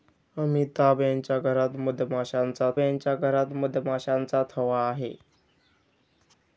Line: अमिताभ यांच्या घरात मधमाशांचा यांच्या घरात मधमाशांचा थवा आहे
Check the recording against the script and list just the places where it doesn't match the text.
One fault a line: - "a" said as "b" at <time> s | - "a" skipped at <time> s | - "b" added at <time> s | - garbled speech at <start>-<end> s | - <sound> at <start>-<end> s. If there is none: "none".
none